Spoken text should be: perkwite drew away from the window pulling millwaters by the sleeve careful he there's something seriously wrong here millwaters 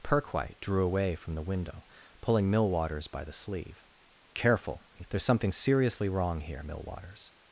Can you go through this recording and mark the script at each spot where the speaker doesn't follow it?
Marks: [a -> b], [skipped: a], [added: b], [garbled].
perkwite drew away from the window pulling millwaters by the sleeve careful he there's something seriously wrong here millwaters